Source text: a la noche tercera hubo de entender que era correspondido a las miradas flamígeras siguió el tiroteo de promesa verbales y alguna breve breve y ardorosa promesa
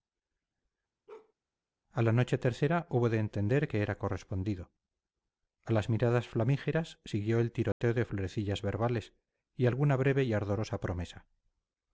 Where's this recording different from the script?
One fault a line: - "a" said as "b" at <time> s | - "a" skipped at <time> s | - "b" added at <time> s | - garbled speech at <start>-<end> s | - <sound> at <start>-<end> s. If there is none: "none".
- bark at 1.1-1.3 s
- dropout at 7.7-7.8 s
- "promesa" said as "florecillas" at 8.1 s
- "breve" skipped at 10.2 s